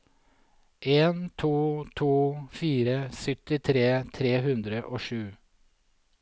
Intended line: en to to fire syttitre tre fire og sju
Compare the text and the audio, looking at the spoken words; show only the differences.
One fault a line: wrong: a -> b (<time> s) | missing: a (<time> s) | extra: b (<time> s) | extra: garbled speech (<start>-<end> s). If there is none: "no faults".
wrong: fire -> hundre (4.5 s)